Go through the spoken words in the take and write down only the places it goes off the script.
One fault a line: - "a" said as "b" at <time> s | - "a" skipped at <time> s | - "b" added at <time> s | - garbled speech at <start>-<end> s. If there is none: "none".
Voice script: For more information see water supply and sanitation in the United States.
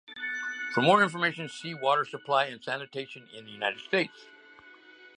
none